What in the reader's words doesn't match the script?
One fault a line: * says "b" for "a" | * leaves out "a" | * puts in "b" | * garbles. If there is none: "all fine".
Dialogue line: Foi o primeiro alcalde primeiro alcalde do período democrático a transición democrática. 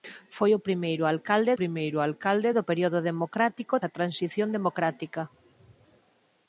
all fine